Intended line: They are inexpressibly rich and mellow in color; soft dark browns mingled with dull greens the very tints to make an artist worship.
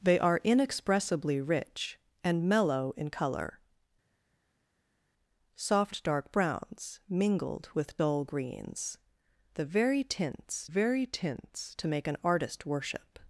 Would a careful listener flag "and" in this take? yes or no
no